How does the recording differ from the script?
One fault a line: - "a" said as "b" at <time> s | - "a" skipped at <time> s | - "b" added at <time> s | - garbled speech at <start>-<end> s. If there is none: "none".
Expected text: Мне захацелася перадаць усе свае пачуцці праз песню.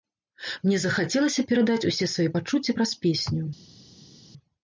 none